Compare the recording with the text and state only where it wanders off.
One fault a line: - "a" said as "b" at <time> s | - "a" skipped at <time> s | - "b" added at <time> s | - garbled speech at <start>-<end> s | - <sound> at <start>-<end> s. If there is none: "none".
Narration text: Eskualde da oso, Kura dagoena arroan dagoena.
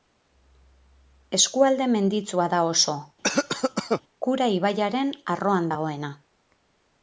- "menditsua" added at 2.0 s
- cough at 3.2-4.0 s
- "dagoena" said as "ibaiaren" at 4.6 s